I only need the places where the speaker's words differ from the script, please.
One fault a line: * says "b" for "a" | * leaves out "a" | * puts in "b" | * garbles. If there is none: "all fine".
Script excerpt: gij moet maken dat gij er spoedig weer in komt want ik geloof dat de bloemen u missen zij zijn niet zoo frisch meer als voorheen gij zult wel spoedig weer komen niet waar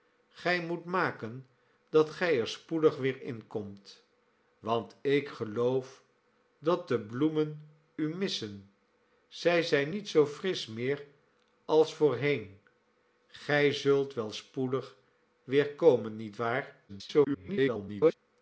* garbles